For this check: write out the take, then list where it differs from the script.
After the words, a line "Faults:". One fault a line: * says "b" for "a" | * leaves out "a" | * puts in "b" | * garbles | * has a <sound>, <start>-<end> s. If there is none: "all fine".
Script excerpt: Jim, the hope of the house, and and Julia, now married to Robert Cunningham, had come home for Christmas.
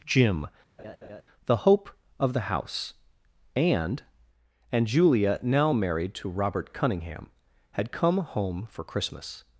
Jim, the hope of the house, and and Julia, now married to Robert Cunningham, had come home for Christmas.
Faults:
* has a laugh, 0.8-1.2 s